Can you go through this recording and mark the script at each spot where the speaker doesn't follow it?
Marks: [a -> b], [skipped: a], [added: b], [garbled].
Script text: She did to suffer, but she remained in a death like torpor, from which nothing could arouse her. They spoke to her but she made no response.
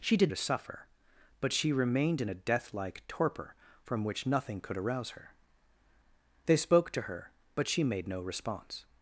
She did to suffer, but she remained in a death like torpor, from which nothing could arouse her. They spoke to her but she made no response.